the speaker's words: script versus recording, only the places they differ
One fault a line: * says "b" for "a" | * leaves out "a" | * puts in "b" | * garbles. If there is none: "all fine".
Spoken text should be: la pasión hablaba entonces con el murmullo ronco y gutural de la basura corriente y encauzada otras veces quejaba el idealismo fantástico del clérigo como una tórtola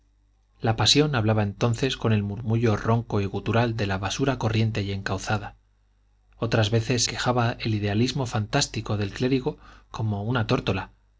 all fine